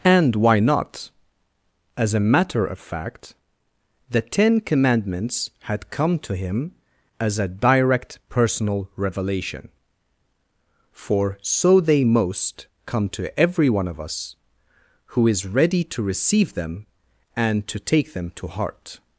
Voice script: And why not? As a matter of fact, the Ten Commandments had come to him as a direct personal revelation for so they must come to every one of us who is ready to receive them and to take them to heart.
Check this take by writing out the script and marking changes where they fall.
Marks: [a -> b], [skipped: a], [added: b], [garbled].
And why not? As a matter of fact, the Ten Commandments had come to him as a direct personal revelation for so they [must -> most] come to every one of us who is ready to receive them and to take them to heart.